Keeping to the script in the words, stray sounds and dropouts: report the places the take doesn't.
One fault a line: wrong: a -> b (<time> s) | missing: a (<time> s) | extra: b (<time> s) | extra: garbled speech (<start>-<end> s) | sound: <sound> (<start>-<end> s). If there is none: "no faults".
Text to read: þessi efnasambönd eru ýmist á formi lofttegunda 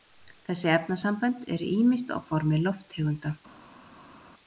no faults